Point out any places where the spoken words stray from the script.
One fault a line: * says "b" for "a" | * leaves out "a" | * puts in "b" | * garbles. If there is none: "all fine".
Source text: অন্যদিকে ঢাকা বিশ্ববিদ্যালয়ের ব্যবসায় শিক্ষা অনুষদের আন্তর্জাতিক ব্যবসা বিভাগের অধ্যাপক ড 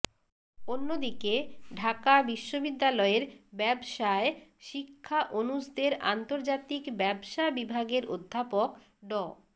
all fine